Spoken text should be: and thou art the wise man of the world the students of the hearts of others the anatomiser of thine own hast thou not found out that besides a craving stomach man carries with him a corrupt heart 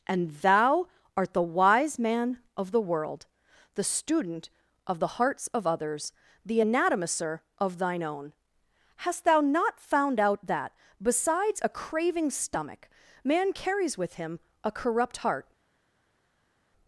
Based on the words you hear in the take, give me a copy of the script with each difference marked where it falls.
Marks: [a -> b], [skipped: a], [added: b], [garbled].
and thou art the wise man of the world the [students -> student] of the hearts of others the anatomiser of thine own hast thou not found out that besides a craving stomach man carries with him a corrupt heart